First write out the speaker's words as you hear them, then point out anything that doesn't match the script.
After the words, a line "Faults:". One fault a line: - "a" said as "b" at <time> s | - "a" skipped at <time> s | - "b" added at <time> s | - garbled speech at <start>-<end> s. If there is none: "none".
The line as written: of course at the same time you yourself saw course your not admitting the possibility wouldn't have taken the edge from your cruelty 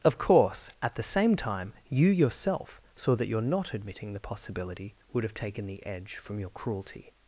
of course at the same time you yourself saw that your not admitting the possibility would have taken the edge from your cruelty
Faults:
- "course" said as "that" at 3.2 s
- "wouldn't" said as "would" at 5.1 s